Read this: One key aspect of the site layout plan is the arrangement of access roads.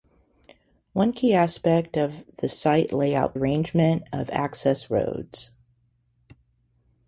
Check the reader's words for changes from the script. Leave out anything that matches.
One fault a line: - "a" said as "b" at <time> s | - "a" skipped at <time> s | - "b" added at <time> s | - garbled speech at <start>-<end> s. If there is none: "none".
- "plan is the" skipped at 3.4 s